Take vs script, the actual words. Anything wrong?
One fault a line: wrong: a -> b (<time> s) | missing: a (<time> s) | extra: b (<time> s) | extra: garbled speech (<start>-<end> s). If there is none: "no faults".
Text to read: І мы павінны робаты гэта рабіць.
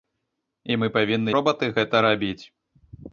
no faults